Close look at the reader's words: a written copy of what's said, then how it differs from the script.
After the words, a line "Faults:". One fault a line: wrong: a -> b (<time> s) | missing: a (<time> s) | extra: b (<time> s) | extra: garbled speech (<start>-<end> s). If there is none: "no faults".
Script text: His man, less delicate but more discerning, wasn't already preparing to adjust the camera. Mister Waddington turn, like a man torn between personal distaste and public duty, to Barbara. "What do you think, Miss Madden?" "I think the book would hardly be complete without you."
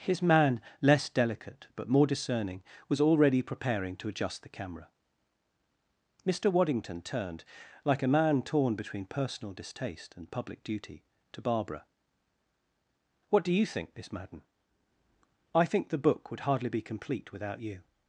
His man, less delicate but more discerning, was already preparing to adjust the camera. Mister Waddington turned, like a man torn between personal distaste and public duty, to Barbara. "What do you think, Miss Madden?" "I think the book would hardly be complete without you."
Faults:
wrong: wasn't -> was (2.9 s)
wrong: turn -> turned (7.0 s)